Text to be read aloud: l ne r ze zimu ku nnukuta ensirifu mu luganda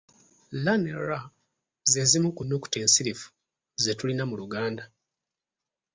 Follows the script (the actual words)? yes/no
no